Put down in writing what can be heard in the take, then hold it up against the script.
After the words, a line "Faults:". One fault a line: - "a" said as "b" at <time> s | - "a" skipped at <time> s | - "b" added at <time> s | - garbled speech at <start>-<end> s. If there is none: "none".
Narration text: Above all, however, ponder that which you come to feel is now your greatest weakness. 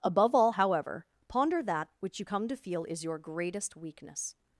Above all, however, ponder that which you come to feel is your greatest weakness.
Faults:
- "now" skipped at 3.0 s